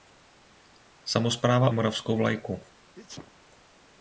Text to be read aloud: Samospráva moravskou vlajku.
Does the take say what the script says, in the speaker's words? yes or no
yes